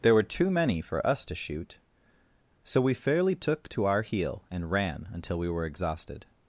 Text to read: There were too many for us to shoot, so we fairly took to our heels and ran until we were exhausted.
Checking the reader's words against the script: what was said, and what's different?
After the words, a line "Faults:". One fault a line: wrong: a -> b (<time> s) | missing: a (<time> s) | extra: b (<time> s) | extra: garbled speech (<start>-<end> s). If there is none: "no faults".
There were too many for us to shoot, so we fairly took to our heel and ran until we were exhausted.
Faults:
wrong: heels -> heel (4.0 s)